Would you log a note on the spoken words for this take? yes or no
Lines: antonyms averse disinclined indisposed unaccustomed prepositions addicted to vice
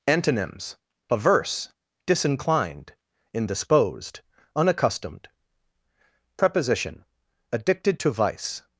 yes